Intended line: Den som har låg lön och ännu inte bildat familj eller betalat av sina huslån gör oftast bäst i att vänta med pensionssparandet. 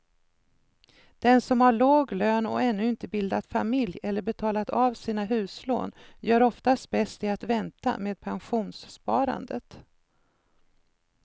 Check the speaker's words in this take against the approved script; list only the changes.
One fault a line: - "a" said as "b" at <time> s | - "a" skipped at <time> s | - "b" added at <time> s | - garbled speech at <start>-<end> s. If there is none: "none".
none